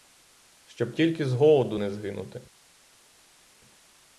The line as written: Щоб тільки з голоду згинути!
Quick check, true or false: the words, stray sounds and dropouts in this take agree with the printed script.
false